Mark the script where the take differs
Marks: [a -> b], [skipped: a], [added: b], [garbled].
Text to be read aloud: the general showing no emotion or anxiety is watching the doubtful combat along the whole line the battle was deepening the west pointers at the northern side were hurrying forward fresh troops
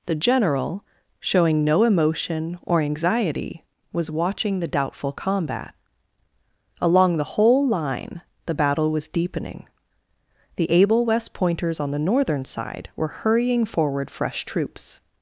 the general showing no emotion or anxiety [is -> was] watching the doubtful combat along the whole line the battle was deepening the [added: able] west pointers [at -> on] the northern side were hurrying forward fresh troops